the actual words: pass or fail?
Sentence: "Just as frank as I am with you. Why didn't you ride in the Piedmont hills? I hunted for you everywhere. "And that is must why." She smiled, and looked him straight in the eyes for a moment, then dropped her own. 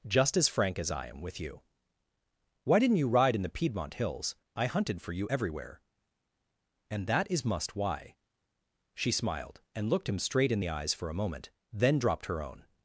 pass